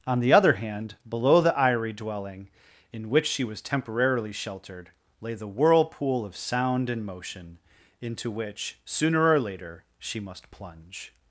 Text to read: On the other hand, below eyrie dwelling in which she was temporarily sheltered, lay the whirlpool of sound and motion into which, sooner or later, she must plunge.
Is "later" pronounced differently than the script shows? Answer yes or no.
no